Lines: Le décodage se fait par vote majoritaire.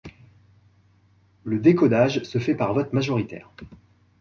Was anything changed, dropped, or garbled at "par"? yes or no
no